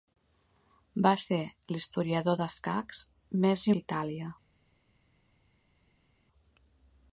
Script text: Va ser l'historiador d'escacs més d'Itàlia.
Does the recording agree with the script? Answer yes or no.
yes